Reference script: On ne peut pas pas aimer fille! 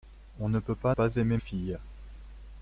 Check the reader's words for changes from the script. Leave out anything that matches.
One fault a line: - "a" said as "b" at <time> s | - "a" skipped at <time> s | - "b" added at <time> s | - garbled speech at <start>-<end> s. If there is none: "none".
none